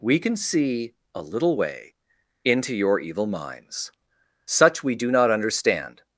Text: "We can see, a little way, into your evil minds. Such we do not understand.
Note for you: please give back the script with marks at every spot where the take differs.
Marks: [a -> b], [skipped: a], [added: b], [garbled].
"We can see, a little way, into your evil minds. Such we do not understand.